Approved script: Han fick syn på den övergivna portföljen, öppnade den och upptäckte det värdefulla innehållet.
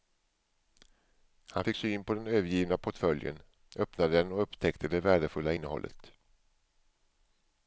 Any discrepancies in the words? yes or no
no